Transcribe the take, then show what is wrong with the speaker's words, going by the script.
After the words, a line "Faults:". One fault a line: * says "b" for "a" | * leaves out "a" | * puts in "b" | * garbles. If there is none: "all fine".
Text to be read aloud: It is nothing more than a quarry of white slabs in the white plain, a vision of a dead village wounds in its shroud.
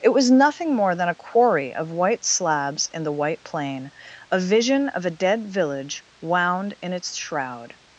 It was nothing more than a quarry of white slabs in the white plain, a vision of a dead village wound in its shroud.
Faults:
* says "was" for "is"
* says "wound" for "wounds"